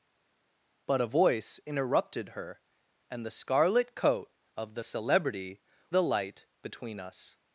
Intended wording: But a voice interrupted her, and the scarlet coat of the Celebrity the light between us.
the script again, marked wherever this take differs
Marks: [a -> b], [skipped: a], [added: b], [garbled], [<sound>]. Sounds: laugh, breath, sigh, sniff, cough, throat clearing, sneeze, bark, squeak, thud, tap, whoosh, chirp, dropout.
But a voice interrupted her, and the scarlet coat of the Celebrity the light between us.